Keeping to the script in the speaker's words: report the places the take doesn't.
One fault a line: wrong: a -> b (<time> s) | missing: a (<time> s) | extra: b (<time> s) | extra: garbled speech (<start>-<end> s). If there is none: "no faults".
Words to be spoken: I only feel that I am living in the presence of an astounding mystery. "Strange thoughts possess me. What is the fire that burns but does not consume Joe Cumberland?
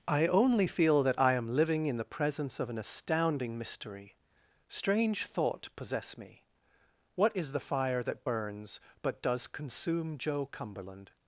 wrong: thoughts -> thought (5.2 s)
missing: not (9.5 s)